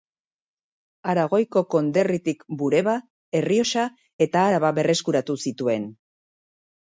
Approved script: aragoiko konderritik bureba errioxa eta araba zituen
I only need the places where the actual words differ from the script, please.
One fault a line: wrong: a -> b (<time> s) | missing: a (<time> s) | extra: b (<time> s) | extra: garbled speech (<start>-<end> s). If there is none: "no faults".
extra: berreskuratu (4.8 s)